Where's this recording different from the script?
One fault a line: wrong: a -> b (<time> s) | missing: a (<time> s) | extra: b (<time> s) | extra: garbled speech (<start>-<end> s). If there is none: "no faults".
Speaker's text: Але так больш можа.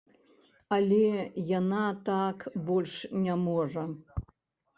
extra: яна (1.6 s)
extra: не (3.3 s)